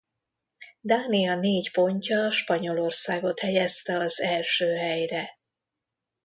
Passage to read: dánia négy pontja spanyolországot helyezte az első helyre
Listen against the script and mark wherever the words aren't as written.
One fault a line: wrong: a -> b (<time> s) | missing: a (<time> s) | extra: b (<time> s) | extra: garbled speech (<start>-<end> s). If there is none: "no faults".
no faults